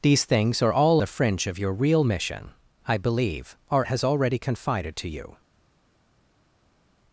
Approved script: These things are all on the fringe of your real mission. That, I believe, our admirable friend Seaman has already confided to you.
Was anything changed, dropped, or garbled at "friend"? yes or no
yes